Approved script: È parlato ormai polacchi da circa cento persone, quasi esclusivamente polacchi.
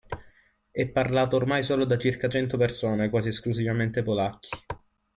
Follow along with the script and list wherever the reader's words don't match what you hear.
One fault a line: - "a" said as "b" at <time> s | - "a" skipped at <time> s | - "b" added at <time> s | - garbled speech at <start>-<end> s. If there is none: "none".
- "polacchi" said as "solo" at 1.6 s